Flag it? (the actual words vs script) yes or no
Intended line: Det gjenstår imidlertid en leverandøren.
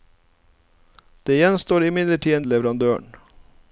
no